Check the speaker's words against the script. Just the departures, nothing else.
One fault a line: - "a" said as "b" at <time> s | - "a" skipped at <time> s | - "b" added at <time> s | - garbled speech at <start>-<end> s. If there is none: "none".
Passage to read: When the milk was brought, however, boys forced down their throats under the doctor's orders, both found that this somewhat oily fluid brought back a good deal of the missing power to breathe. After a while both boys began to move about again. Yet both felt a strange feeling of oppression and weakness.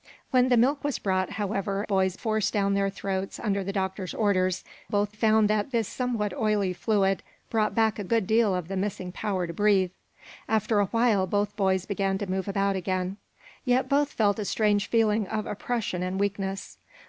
none